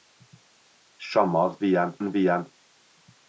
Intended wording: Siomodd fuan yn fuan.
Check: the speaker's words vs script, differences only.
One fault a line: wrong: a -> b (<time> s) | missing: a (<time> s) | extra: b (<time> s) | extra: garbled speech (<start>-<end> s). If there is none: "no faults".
no faults